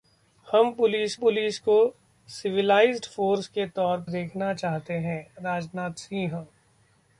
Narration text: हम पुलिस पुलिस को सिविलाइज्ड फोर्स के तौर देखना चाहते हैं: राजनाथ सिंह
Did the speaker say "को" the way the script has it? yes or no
yes